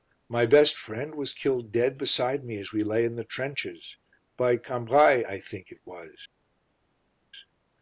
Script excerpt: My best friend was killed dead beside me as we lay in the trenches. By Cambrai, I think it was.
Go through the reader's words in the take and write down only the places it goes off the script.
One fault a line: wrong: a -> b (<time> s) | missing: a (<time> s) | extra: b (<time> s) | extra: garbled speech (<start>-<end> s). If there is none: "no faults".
no faults